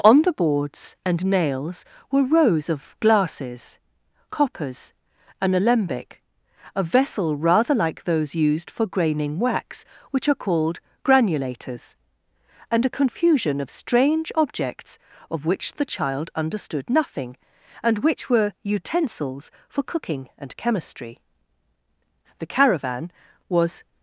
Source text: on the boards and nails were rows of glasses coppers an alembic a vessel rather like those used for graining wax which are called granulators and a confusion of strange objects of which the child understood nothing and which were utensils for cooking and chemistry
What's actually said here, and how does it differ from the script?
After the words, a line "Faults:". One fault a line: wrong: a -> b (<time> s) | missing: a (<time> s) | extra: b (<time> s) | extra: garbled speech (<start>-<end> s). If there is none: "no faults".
on the boards and nails were rows of glasses coppers an alembic a vessel rather like those used for graining wax which are called granulators and a confusion of strange objects of which the child understood nothing and which were utensils for cooking and chemistry the caravan was
Faults:
extra: the caravan was (22.4 s)